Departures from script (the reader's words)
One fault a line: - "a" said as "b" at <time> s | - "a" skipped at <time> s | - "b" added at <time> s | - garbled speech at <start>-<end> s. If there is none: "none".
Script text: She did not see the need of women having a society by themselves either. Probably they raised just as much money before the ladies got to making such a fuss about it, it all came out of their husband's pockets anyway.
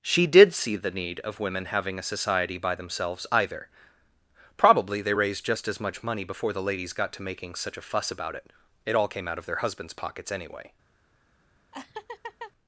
- "not" skipped at 0.5 s